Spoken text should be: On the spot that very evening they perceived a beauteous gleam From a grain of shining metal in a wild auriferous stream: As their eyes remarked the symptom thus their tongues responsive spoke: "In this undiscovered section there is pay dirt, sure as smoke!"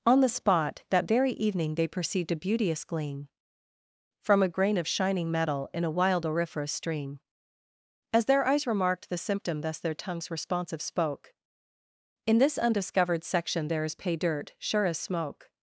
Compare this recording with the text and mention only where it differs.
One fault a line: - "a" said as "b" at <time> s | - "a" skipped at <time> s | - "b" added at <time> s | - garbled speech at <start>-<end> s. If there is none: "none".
none